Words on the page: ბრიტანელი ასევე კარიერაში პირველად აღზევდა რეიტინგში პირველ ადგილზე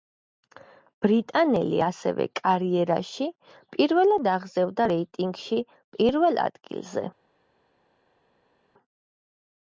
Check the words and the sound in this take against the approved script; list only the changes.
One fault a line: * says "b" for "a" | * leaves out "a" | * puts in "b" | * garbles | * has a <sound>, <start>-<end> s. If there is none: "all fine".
all fine